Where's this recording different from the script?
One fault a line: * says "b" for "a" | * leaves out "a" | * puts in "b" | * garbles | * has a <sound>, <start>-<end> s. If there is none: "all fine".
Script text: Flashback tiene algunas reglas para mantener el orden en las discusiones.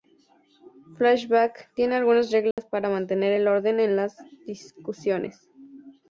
* has a dropout, 2.5-2.6 s